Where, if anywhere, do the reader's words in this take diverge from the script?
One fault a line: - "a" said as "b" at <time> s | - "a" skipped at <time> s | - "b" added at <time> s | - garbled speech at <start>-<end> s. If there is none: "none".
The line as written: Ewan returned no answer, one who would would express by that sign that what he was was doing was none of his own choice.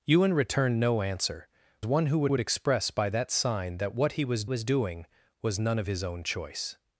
none